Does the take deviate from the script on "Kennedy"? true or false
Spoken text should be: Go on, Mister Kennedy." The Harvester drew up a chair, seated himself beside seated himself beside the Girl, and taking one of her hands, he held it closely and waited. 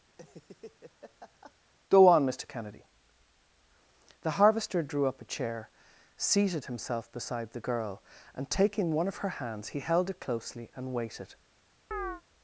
false